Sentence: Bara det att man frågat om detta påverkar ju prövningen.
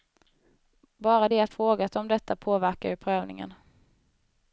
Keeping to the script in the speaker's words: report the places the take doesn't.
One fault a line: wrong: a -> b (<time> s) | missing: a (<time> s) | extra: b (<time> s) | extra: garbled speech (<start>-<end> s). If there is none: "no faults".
missing: man (1.5 s)